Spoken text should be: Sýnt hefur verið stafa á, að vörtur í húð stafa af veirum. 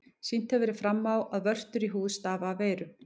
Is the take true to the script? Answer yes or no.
no